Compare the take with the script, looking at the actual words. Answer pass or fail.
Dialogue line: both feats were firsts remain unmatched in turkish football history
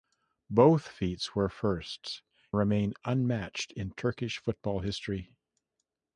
pass